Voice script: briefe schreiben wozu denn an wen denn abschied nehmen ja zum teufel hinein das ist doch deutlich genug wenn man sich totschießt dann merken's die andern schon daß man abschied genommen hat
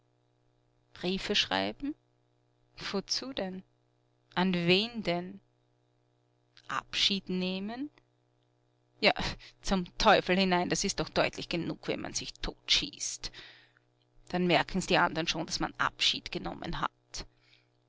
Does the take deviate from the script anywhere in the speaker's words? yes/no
no